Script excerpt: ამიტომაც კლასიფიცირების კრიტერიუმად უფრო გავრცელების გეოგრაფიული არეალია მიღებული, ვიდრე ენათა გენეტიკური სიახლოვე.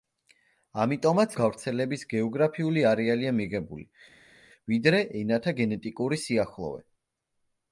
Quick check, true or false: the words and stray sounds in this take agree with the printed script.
false